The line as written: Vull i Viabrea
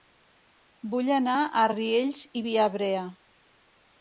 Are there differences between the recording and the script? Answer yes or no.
yes